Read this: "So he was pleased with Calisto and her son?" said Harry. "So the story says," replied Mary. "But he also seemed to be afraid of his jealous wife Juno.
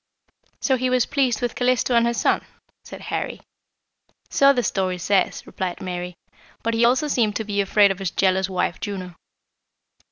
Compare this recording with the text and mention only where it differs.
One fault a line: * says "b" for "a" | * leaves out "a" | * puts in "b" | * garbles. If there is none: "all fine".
all fine